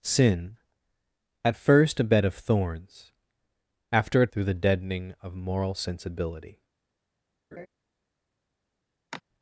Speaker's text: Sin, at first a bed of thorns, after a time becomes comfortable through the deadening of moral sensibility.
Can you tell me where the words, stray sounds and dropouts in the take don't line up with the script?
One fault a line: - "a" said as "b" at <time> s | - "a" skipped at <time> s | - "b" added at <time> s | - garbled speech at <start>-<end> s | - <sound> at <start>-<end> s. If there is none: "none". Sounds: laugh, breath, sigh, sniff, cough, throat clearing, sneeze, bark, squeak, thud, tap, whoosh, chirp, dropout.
- "time becomes comfortable" skipped at 4.3 s
- laugh at 7.5-7.7 s
- sigh at 9.1-9.2 s